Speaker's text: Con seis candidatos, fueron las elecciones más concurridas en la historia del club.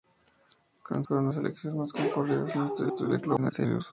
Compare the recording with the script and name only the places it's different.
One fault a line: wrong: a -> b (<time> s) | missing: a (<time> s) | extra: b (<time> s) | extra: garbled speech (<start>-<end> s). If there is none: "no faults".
missing: seis candidatos (1.1 s)
extra: historia (2.9 s)
extra: garbled speech (3.4-3.9 s)